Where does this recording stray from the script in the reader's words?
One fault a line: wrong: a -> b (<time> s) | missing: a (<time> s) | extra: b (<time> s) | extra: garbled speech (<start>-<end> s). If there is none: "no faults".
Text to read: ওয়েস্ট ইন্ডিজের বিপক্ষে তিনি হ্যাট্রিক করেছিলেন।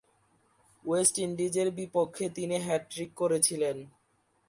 no faults